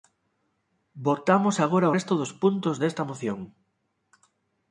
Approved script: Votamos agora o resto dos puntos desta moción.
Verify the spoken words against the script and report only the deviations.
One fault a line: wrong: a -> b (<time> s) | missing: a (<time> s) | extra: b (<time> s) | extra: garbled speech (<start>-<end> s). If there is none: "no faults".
no faults